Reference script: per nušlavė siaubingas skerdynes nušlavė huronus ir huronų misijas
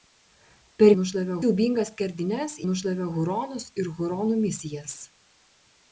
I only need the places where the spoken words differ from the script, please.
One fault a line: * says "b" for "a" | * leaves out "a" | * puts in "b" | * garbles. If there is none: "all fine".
all fine